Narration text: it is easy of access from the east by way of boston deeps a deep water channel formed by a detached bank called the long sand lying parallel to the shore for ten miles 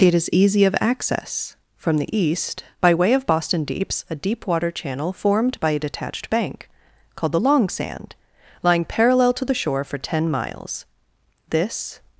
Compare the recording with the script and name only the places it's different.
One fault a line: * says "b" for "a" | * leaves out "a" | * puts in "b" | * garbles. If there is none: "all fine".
* puts in "this"